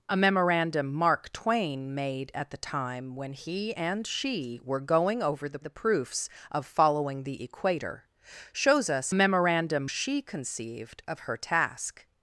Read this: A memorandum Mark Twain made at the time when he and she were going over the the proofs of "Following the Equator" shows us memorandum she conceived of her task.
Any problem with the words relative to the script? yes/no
no